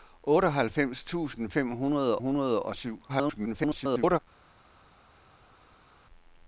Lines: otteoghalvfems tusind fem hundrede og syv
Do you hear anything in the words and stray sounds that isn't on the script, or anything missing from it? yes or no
yes